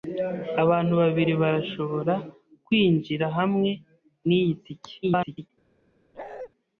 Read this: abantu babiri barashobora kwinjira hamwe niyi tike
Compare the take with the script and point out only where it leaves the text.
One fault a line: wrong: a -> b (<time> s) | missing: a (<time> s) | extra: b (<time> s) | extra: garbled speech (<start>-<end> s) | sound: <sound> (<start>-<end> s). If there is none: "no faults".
extra: garbled speech (5.0-5.5 s)
sound: bark (6.1-6.5 s)